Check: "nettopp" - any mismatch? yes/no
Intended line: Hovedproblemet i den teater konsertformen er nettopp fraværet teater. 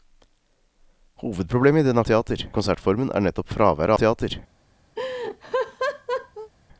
no